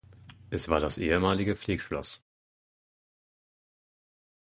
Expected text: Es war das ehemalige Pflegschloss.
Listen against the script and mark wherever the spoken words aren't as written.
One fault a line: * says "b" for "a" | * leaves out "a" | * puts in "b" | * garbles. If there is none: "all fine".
all fine